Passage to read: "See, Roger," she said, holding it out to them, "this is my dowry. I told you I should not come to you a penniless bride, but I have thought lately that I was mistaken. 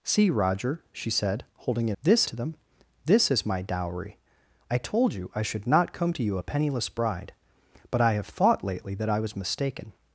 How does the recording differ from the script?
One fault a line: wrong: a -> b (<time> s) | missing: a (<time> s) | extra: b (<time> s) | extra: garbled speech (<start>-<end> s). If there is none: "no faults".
wrong: out -> this (2.0 s)